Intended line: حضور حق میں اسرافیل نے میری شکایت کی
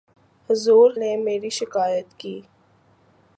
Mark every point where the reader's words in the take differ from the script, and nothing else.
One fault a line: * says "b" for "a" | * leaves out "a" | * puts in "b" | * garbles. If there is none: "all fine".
* leaves out "حق میں اسرافیل"